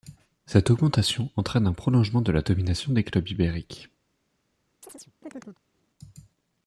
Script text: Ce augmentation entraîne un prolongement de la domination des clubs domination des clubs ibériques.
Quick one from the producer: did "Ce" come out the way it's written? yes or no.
no